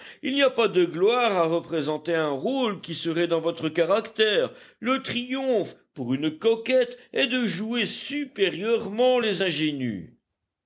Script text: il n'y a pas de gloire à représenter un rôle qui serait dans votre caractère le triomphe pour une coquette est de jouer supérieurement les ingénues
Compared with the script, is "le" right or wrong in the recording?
right